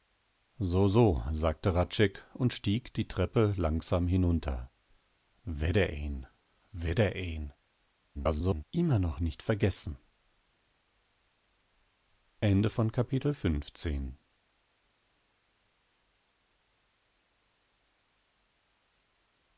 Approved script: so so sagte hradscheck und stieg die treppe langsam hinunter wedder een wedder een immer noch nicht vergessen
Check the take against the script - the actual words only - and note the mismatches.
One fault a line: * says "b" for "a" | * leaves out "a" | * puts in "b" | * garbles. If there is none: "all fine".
* garbles